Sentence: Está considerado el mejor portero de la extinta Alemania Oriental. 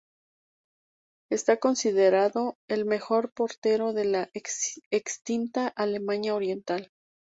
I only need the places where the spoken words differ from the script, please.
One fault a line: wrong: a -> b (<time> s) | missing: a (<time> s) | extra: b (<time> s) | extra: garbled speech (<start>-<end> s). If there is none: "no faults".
no faults